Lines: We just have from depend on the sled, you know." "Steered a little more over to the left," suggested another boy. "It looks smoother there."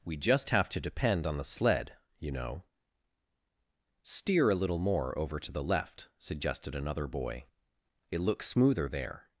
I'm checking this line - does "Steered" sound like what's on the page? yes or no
no